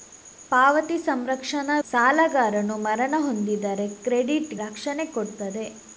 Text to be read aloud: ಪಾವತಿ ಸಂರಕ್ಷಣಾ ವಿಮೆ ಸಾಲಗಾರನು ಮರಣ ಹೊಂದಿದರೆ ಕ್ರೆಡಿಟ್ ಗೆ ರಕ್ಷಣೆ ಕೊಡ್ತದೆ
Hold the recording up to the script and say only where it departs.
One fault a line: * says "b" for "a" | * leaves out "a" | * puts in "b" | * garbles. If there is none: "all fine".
* leaves out "ವಿಮೆ"
* leaves out "ಗೆ"